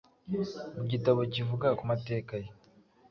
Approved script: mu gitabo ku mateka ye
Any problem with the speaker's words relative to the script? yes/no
yes